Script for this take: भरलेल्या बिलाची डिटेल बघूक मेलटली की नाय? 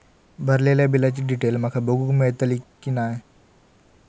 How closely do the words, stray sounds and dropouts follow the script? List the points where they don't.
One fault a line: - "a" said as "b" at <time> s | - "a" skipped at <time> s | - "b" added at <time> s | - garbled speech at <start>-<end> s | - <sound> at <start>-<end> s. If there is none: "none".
- "माका" added at 1.6 s